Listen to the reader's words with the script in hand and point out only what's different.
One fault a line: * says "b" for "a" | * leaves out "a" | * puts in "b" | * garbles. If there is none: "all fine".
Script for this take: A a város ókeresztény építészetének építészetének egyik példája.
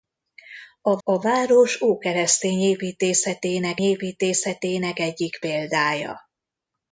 all fine